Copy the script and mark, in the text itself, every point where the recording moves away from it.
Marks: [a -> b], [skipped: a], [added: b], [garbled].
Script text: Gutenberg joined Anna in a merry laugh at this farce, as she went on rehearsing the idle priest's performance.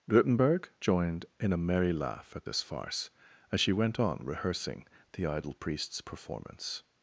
Gutenberg joined [skipped: Anna] in a merry laugh at this farce, as she went on rehearsing the idle priest's performance.